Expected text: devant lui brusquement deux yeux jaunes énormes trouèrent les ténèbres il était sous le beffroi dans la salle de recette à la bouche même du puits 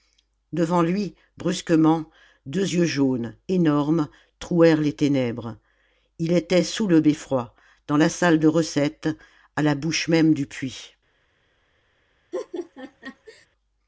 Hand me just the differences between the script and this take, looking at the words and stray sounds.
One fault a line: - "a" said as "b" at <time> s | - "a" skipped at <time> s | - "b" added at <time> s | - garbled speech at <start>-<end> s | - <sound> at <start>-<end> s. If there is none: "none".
- laugh at 12.3-13.5 s